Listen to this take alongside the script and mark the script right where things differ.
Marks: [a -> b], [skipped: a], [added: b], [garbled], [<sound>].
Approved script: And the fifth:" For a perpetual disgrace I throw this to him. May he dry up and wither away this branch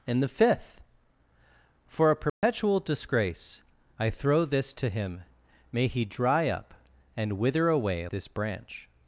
And the fifth:" For a perpetual [dropout] disgrace I throw this to him. May he dry up and wither away this branch